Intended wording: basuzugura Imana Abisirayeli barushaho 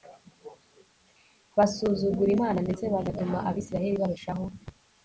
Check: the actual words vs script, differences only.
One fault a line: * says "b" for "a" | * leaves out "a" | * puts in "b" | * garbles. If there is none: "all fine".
* puts in "ndetse bagatuma"